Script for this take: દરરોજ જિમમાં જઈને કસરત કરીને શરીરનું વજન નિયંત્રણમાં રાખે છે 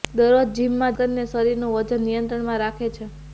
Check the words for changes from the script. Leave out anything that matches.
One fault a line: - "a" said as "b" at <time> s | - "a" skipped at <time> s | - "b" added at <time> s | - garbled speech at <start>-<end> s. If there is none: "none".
- "જઈને કસરત" skipped at 0.9 s